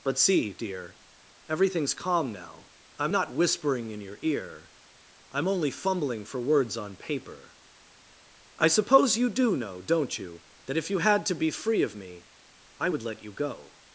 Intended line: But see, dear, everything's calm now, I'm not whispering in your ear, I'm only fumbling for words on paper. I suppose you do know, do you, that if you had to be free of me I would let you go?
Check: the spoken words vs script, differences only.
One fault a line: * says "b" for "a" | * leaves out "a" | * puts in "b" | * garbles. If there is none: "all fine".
* says "don't" for "do"